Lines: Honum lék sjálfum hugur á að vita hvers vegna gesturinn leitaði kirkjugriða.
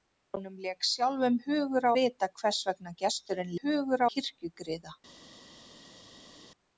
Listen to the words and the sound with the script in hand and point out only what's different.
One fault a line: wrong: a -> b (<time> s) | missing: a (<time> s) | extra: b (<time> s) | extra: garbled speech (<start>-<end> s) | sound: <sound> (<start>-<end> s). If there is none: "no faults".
missing: að (1.9 s)
wrong: leitaði -> hugur (3.6 s)